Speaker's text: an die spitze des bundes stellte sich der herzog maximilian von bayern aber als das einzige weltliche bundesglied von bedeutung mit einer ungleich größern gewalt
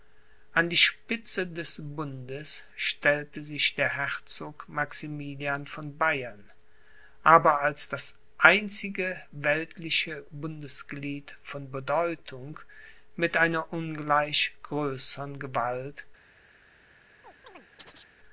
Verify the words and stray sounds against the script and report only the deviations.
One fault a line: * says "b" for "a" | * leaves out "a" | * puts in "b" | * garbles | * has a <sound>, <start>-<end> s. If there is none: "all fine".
* has a chirp, 17.2-18.1 s